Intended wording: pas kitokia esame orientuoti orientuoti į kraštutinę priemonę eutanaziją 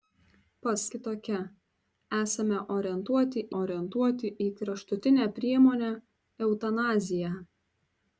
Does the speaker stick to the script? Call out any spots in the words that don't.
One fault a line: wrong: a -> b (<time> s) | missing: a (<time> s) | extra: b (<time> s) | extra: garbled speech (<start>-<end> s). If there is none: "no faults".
no faults